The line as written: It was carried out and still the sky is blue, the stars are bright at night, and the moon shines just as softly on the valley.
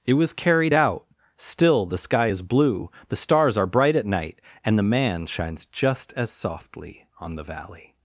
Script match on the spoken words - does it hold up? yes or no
no